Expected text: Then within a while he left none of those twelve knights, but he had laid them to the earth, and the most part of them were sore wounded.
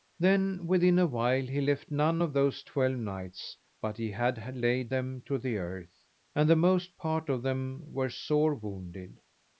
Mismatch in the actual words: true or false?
false